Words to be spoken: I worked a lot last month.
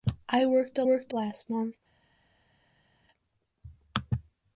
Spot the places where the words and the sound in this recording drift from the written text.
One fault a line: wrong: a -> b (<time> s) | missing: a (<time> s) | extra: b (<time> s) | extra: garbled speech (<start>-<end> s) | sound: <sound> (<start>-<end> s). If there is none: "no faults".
wrong: lot -> worked (0.8 s)